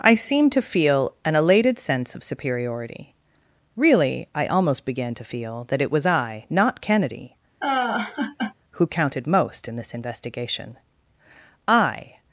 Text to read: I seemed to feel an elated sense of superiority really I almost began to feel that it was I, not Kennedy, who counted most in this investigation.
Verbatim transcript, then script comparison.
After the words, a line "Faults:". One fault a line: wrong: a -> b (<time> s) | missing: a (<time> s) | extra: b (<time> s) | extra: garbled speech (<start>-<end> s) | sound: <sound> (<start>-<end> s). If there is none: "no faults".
I seemed to feel an elated sense of superiority really I almost began to feel that it was I, not Kennedy, who counted most in this investigation. I
Faults:
sound: laugh (7.6-8.5 s)
extra: I (11.7 s)